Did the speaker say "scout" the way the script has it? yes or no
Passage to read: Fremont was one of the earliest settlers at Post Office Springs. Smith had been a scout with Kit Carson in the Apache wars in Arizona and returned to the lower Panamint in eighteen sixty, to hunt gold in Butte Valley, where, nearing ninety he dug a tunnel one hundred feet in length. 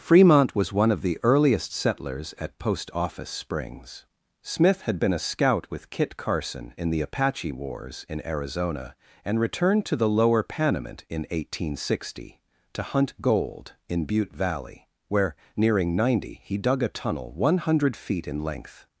yes